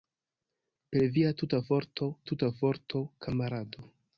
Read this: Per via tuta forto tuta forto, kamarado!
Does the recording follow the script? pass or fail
pass